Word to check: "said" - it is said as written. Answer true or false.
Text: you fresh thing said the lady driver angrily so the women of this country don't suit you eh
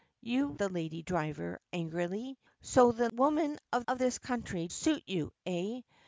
false